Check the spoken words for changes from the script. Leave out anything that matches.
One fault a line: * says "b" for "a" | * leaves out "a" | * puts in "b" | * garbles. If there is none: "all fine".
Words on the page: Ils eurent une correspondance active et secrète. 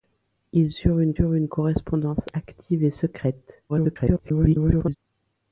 * puts in "eurent une"
* garbles